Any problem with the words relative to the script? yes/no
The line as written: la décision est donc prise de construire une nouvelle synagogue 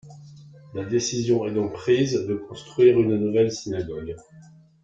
no